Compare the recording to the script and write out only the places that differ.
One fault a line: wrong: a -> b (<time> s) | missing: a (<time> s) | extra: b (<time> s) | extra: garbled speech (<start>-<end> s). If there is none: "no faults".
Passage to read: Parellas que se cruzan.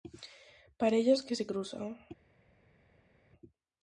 no faults